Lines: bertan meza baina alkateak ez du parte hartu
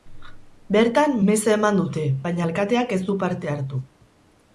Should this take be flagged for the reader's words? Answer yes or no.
yes